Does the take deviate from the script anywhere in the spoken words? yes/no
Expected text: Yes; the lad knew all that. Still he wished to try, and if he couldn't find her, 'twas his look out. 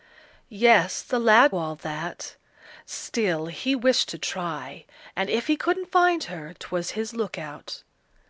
yes